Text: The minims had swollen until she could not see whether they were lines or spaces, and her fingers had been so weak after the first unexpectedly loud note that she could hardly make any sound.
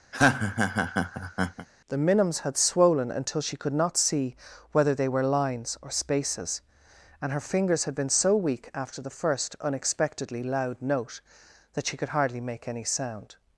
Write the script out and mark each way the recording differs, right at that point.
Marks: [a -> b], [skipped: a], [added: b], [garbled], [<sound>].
[laugh] The minims had swollen until she could not see whether they were lines or spaces, and her fingers had been so weak after the first unexpectedly loud note that she could hardly make any sound.